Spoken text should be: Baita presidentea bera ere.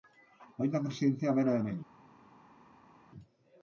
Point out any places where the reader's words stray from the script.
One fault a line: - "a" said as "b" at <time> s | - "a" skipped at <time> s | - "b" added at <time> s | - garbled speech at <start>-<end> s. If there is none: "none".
none